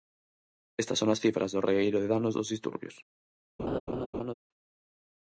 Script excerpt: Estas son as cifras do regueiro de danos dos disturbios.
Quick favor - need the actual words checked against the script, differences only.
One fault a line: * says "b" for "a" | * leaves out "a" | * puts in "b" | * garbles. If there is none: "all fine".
all fine